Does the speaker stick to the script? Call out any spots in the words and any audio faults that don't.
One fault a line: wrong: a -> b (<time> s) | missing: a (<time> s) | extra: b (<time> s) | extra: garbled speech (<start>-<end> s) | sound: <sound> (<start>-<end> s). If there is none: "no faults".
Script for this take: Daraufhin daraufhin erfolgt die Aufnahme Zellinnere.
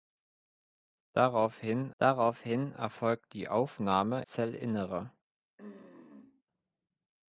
sound: throat clearing (5.6-6.4 s)